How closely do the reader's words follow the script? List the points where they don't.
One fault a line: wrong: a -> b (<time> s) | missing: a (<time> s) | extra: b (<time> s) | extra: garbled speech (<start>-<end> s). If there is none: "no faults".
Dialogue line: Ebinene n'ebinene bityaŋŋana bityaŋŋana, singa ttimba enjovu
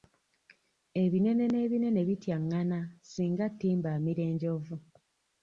missing: bityaŋŋana (2.8 s)
extra: amira (4.0 s)